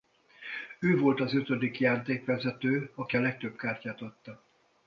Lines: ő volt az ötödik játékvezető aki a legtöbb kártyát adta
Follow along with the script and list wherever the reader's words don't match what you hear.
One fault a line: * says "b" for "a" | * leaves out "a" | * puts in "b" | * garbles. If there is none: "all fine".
all fine